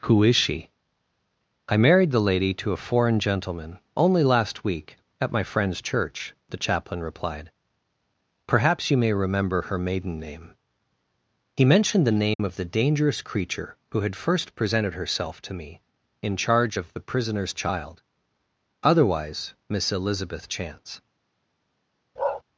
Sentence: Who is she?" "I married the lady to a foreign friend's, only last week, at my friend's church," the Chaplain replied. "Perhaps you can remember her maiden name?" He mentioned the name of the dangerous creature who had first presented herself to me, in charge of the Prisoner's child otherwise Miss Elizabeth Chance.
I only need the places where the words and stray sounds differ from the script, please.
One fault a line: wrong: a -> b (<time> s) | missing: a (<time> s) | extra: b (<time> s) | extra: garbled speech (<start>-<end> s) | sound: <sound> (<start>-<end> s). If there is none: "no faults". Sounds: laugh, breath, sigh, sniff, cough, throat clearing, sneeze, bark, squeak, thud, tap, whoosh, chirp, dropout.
wrong: friend's -> gentleman (3.2 s)
wrong: can -> may (9.0 s)
sound: dropout (12.3-12.4 s)
sound: bark (22.2-22.4 s)